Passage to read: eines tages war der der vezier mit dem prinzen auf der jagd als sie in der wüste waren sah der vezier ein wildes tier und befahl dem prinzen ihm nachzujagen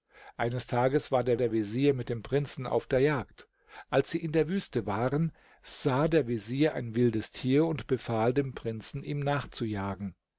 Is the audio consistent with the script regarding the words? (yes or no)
yes